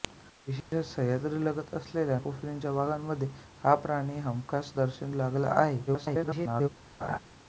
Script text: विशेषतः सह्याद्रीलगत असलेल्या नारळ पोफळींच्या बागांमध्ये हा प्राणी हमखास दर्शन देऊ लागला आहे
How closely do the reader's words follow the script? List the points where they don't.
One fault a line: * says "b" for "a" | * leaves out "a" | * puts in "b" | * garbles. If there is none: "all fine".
* leaves out "नारळ"
* leaves out "देऊ"
* garbles